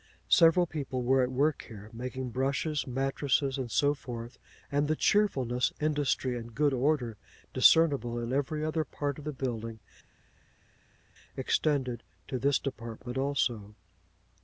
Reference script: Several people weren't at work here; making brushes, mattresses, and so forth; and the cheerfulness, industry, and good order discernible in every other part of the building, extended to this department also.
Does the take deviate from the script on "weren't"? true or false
true